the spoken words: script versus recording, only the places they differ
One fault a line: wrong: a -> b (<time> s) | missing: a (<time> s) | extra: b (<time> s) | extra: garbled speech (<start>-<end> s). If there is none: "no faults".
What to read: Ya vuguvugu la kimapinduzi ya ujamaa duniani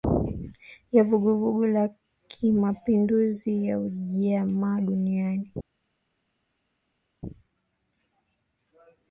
no faults